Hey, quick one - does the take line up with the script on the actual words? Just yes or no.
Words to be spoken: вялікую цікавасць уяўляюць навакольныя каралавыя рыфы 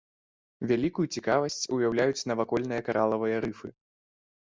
yes